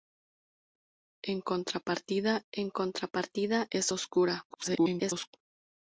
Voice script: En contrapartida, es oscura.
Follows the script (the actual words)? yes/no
no